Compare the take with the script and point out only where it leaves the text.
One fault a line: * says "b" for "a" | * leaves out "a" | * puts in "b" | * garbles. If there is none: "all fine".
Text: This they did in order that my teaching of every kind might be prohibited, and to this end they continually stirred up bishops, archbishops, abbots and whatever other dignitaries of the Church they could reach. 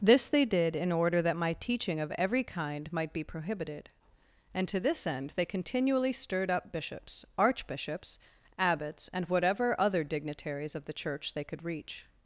all fine